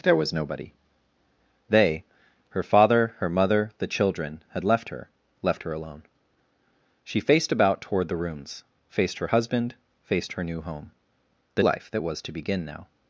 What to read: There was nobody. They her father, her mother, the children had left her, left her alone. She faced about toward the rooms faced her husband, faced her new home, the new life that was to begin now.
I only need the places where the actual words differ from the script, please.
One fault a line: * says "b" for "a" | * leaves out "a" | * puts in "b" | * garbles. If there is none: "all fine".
* leaves out "new"